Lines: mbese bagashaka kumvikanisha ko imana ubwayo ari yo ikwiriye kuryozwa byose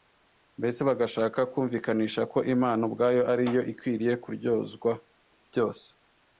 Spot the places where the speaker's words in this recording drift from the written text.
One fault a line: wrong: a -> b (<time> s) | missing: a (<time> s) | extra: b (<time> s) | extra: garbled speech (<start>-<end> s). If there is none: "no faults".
no faults